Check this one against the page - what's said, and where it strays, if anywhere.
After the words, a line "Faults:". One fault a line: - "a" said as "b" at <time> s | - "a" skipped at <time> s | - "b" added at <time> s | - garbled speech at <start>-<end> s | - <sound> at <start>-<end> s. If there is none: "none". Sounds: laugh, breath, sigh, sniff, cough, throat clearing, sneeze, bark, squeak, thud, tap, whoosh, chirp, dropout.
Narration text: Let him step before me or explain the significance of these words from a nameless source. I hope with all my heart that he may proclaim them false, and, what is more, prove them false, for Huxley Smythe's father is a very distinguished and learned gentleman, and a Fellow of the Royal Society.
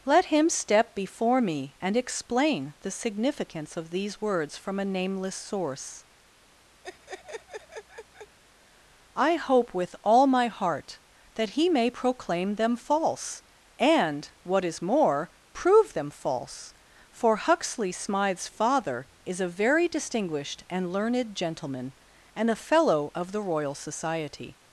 Let him step before me and explain the significance of these words from a nameless source. I hope with all my heart that he may proclaim them false, and, what is more, prove them false, for Huxley Smythe's father is a very distinguished and learned gentleman, and a Fellow of the Royal Society.
Faults:
- "or" said as "and" at 1.8 s
- laugh at 6.8-8.4 s